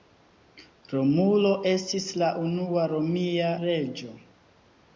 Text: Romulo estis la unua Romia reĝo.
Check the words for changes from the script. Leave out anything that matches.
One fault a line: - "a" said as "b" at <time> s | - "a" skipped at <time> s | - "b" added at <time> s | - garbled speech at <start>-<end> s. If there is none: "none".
none